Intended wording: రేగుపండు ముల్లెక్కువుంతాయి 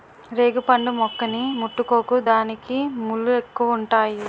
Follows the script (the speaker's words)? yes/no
no